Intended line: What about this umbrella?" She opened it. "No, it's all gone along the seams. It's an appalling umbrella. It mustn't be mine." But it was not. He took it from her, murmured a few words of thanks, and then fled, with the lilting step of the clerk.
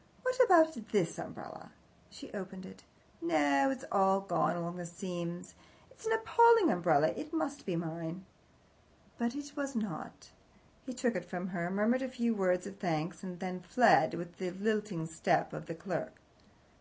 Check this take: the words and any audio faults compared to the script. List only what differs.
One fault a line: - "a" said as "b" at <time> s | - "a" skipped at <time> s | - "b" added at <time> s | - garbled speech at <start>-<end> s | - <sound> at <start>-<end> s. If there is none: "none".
- "mustn't" said as "must" at 7.3 s